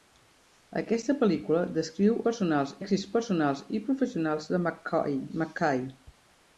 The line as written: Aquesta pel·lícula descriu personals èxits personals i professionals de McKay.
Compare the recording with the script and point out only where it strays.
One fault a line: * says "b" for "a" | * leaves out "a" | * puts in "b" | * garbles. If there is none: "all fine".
all fine